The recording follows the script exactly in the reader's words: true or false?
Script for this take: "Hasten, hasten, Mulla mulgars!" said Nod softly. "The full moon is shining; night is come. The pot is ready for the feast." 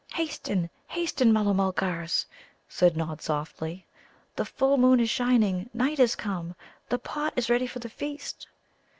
true